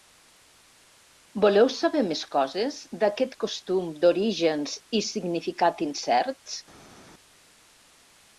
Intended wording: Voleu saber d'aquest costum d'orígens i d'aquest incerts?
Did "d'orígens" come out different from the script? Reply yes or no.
no